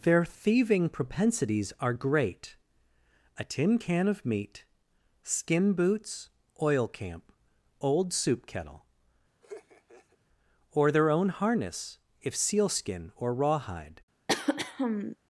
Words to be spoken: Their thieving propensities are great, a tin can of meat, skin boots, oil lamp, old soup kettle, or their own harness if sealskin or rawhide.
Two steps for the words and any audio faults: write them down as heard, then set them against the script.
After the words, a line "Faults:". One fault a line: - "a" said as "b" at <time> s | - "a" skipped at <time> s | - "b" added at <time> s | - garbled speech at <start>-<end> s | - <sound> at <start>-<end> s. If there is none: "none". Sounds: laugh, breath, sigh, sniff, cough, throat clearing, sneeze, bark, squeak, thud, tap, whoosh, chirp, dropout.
Their thieving propensities are great, a tin can of meat, skin boots, oil camp, old soup kettle, or their own harness if sealskin or rawhide.
Faults:
- "lamp" said as "camp" at 6.9 s
- laugh at 9.4-10.2 s
- throat clearing at 14.3-15.2 s